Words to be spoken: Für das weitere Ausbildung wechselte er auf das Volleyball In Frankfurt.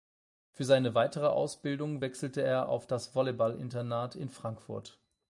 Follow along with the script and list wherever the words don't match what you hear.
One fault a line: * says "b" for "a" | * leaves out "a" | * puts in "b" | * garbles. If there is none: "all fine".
* says "seine" for "das"
* puts in "Internat"